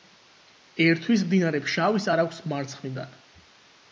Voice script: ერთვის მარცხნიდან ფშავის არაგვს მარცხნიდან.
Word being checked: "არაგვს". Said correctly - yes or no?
yes